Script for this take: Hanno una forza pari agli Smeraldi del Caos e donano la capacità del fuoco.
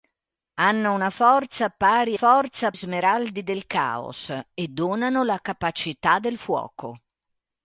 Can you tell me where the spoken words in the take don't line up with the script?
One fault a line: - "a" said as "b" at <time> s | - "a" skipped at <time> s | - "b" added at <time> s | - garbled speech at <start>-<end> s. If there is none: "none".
- "agli" said as "forza" at 2.1 s